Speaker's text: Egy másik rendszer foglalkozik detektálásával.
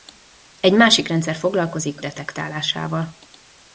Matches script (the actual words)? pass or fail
pass